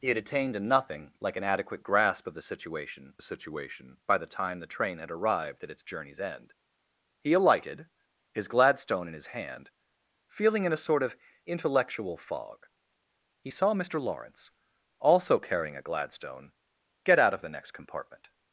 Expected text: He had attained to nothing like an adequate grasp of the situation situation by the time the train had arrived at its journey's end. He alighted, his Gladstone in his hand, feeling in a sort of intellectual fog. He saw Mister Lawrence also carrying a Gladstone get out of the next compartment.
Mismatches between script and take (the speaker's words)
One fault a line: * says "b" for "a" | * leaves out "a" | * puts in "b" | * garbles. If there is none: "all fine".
all fine